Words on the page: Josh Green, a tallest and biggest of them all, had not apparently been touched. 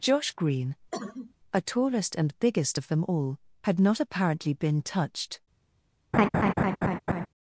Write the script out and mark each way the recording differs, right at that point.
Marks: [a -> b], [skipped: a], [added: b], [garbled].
Josh Green, a tallest and biggest of them all, had not apparently been touched.